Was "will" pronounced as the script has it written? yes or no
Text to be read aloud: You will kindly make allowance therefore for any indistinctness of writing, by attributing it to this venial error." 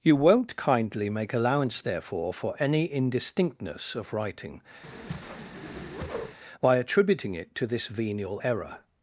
no